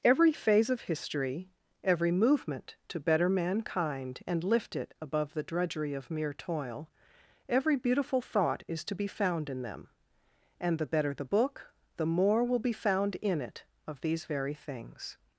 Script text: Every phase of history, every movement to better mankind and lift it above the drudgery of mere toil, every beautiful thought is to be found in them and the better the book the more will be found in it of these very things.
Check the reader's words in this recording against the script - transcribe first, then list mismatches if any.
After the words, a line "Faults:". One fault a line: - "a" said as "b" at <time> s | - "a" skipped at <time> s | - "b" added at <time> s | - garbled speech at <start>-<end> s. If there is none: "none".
Every phase of history, every movement to better mankind and lift it above the drudgery of mere toil, every beautiful thought is to be found in them and the better the book the more will be found in it of these very things.
Faults:
none